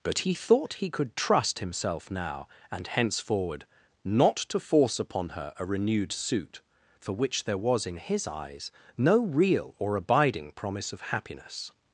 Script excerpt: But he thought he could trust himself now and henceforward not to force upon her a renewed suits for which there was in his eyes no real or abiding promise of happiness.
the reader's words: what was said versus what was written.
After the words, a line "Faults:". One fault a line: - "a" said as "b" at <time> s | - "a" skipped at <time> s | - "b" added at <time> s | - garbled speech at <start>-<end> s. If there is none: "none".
But he thought he could trust himself now and henceforward not to force upon her a renewed suit for which there was in his eyes no real or abiding promise of happiness.
Faults:
- "suits" said as "suit" at 6.1 s